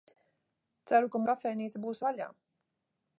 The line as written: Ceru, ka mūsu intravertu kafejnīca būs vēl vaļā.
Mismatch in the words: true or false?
true